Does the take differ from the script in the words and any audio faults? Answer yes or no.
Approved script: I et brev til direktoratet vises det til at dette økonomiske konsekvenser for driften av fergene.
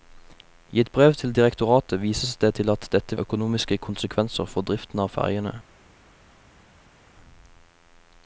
no